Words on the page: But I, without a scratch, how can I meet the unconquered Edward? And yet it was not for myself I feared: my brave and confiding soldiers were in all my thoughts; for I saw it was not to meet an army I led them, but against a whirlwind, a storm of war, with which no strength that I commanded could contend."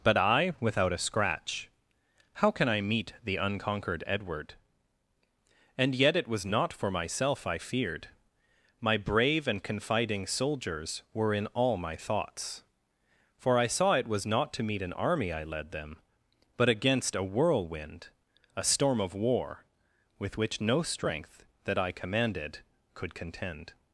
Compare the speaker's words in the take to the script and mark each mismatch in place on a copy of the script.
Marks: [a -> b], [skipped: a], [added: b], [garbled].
But I, without a scratch, how can I meet the unconquered Edward? And yet it was not for myself I feared: my brave and confiding soldiers were in all my thoughts; for I saw it was not to meet an army I led them, but against a whirlwind, a storm of war, with which no strength that I commanded could contend."